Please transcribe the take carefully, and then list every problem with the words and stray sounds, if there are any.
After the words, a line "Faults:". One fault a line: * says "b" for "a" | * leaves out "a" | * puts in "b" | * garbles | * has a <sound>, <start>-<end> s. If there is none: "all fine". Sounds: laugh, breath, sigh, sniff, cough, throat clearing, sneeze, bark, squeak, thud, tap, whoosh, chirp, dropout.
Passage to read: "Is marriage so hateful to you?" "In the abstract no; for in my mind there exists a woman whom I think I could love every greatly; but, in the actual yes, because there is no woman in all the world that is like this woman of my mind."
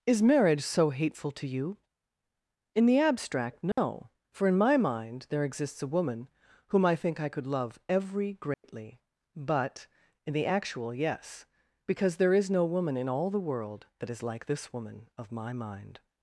"Is marriage so hateful to you?" "In the abstract no; for in my mind there exists a woman whom I think I could love every greatly; but, in the actual yes, because there is no woman in all the world that is like this woman of my mind."
Faults:
* has a dropout, 3.7-3.8 s
* has a dropout, 8.5-8.6 s